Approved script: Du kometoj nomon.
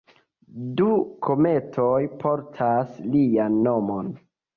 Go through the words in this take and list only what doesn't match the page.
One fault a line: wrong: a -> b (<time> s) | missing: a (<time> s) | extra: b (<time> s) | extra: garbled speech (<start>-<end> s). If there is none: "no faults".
extra: portas lian (2.2 s)